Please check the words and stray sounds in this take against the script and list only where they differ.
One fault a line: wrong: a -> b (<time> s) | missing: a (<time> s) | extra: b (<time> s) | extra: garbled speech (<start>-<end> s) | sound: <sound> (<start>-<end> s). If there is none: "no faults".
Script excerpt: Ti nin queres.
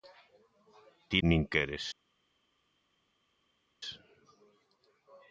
no faults